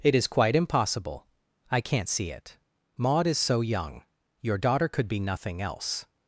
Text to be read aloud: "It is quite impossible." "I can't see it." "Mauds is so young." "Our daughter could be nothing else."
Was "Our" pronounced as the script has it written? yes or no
no